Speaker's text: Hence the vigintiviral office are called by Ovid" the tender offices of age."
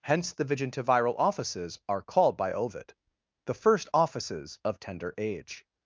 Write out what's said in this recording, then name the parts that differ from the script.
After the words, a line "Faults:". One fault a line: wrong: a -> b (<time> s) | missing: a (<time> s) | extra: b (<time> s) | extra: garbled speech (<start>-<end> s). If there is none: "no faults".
Hence the vigintiviral offices are called by Ovid" the first offices of tender age."
Faults:
wrong: office -> offices (1.2 s)
wrong: tender -> first (3.5 s)
extra: tender (4.8 s)